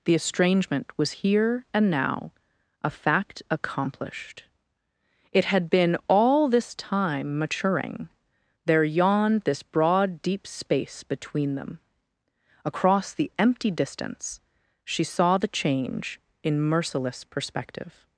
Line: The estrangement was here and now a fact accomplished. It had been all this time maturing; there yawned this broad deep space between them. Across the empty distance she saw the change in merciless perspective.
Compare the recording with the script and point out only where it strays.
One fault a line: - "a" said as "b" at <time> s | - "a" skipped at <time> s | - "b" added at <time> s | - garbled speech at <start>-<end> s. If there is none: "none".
none